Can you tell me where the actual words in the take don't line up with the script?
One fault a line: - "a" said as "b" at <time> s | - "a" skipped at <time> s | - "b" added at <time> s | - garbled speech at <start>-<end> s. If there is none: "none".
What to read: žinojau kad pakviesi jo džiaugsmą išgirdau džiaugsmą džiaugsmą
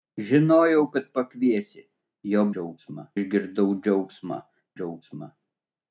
none